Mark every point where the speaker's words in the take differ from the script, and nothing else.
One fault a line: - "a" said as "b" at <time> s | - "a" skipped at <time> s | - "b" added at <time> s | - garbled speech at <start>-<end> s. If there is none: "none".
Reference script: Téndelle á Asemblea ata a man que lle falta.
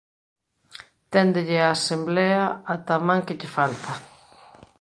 none